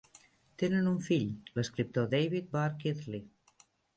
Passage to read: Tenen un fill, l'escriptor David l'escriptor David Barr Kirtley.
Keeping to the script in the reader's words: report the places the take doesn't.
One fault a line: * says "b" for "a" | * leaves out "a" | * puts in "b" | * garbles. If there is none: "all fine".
* leaves out "l'escriptor David"